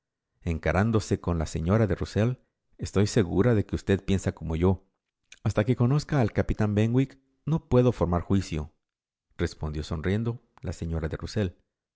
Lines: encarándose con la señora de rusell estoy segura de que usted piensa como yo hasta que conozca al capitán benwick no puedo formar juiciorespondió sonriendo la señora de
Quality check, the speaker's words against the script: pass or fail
pass